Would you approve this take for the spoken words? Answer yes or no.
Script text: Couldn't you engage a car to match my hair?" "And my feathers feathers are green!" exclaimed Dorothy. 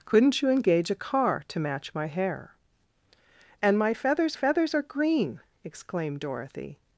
yes